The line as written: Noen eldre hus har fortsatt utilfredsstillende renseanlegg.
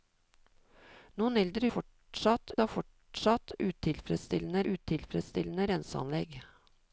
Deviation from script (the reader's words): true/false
true